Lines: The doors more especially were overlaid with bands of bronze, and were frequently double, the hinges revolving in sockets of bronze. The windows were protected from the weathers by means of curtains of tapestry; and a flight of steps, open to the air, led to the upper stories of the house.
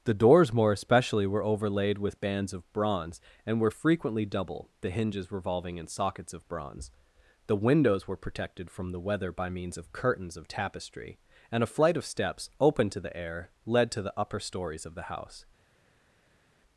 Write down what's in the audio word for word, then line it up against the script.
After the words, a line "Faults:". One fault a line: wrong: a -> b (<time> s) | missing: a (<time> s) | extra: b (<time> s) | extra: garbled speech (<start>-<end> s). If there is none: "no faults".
The doors more especially were overlaid with bands of bronze, and were frequently double, the hinges revolving in sockets of bronze. The windows were protected from the weather by means of curtains of tapestry; and a flight of steps, open to the air, led to the upper stories of the house.
Faults:
wrong: weathers -> weather (9.0 s)